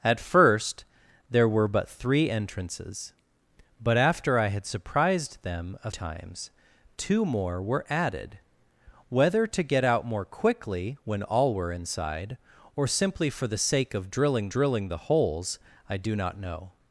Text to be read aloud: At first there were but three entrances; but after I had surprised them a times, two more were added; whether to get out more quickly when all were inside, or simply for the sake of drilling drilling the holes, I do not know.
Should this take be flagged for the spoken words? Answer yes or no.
no